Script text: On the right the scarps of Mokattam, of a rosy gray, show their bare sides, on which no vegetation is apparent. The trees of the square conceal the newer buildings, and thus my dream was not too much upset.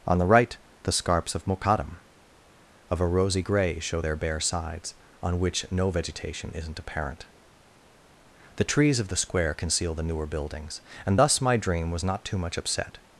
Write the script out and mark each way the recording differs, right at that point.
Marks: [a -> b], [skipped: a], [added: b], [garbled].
On the right the scarps of Mokattam, of a rosy gray, show their bare sides, on which no vegetation [is -> isn't] apparent. The trees of the square conceal the newer buildings, and thus my dream was not too much upset.